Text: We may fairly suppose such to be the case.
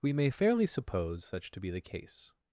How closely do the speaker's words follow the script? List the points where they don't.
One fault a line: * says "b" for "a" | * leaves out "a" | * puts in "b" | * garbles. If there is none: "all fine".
all fine